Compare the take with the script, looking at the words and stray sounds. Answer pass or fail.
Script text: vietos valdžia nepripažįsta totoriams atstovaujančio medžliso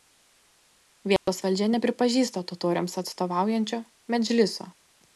fail